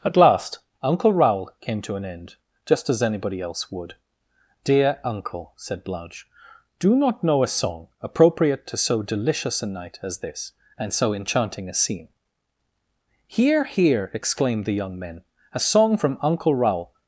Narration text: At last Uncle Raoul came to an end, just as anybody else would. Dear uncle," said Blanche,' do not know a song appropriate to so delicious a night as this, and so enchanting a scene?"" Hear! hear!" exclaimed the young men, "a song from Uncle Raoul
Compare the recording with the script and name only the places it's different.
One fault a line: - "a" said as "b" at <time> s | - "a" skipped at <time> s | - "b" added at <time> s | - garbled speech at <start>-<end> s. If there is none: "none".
none